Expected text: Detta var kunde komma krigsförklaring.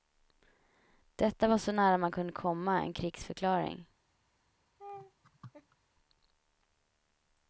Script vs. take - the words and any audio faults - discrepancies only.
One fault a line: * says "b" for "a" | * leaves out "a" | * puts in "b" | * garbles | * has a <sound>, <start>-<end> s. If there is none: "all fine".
* puts in "så nära man"
* puts in "en"
* has a laugh, 4.8-5.8 s